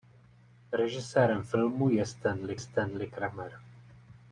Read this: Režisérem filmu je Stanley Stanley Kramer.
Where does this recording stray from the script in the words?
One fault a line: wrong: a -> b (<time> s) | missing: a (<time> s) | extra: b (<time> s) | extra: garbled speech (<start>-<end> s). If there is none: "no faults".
no faults